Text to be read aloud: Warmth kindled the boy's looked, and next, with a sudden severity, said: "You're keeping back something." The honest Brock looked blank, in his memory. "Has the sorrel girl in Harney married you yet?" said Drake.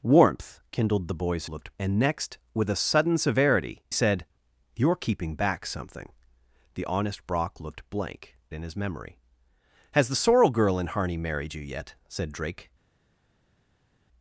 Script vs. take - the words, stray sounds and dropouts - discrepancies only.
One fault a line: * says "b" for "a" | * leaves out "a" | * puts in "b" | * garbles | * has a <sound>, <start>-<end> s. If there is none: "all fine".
all fine